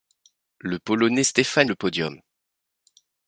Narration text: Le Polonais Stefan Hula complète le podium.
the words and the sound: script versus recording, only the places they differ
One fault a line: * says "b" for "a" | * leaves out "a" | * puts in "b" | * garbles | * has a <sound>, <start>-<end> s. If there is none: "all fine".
* leaves out "Hula complète"